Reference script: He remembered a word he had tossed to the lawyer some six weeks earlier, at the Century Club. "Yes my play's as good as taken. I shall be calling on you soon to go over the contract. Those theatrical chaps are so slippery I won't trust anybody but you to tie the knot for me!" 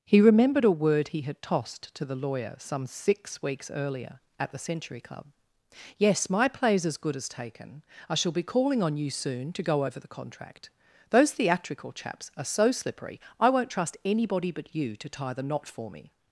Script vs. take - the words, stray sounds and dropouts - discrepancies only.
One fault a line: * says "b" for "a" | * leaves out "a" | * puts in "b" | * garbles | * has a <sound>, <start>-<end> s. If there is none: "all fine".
all fine